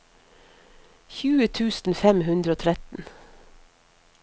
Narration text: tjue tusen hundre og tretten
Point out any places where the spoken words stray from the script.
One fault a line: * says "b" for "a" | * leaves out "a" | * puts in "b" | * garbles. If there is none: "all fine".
* puts in "fem"